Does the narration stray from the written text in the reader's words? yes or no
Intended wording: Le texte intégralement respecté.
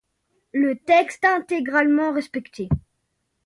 no